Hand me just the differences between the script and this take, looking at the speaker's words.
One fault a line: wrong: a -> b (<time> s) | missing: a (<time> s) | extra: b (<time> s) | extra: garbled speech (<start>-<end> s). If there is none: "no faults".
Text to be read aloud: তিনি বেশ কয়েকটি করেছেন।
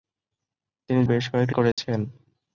no faults